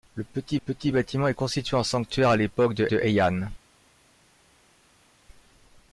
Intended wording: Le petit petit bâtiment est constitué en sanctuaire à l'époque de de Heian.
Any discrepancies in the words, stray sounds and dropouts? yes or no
no